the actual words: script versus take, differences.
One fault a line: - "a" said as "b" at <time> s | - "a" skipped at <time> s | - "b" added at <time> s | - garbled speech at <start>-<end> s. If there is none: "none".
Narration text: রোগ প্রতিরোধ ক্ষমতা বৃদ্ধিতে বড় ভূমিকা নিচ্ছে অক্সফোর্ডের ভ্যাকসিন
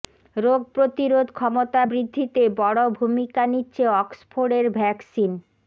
none